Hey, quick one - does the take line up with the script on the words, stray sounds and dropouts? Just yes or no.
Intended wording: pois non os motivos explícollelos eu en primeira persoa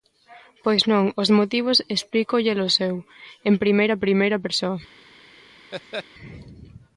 no